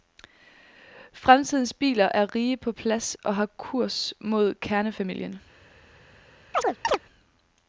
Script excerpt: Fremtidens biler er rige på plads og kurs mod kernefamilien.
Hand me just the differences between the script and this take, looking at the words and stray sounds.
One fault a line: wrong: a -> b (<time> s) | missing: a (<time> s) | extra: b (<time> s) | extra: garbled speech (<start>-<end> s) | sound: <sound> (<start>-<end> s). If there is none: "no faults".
extra: har (3.3 s)
sound: chirp (6.5-7.0 s)